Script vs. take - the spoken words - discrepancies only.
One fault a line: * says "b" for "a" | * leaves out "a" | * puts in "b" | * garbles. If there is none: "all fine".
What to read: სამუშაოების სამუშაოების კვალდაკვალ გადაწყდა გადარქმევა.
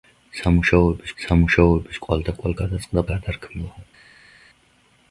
all fine